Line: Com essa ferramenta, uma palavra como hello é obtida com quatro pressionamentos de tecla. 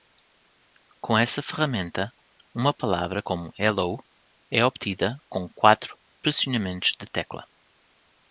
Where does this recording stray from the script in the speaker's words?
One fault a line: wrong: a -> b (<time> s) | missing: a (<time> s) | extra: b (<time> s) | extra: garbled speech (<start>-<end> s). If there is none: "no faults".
no faults